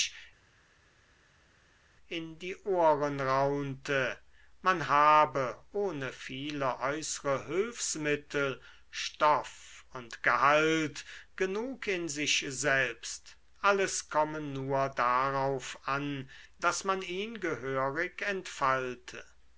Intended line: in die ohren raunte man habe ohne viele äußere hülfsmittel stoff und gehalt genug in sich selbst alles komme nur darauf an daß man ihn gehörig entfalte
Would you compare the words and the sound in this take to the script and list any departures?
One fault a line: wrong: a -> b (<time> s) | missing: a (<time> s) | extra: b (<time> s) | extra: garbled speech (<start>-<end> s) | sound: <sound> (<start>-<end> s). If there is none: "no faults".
no faults